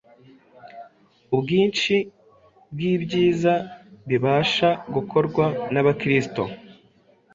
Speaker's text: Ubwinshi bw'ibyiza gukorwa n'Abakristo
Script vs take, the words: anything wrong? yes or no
yes